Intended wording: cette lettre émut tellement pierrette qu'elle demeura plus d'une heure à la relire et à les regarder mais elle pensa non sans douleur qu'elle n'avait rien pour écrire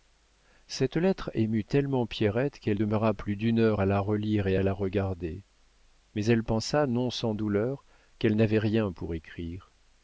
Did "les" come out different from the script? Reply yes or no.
yes